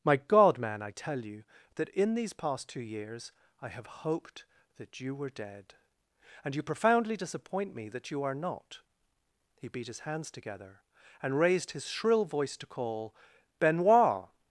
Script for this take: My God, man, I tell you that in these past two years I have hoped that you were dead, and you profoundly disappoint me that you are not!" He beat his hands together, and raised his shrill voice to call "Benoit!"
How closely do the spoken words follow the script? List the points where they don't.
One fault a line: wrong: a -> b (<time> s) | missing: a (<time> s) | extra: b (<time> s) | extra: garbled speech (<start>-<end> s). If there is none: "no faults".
no faults